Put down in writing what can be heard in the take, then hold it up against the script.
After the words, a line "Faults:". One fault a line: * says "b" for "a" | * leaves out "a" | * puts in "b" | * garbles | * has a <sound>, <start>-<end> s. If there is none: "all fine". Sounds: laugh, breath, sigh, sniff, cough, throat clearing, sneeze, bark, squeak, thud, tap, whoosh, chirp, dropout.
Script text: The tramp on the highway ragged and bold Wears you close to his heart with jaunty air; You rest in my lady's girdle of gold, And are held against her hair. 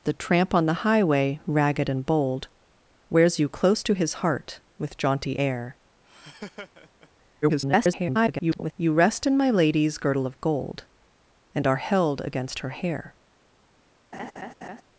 The tramp on the highway ragged and bold Wears you close to his heart with jaunty air; [garbled] You rest in my lady's girdle of gold, And are held against her hair.
Faults:
* has a laugh, 6.0-7.1 s
* garbles
* has a laugh, 14.1-14.8 s